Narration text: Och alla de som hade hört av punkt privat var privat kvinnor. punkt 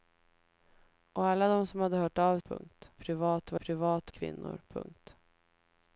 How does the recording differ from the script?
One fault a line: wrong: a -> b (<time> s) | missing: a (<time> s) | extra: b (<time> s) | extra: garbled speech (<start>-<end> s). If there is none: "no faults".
no faults